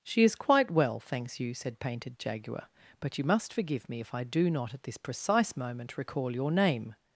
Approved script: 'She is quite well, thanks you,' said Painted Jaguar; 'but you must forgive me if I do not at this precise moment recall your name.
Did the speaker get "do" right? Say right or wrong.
right